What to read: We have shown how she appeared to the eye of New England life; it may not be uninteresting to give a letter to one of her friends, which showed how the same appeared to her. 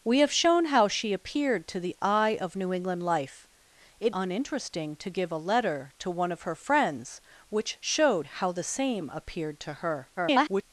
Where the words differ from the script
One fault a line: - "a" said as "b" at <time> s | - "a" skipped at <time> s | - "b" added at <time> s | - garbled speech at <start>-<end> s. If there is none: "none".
- "may not be" skipped at 4.2 s
- garbled speech at 10.2-10.6 s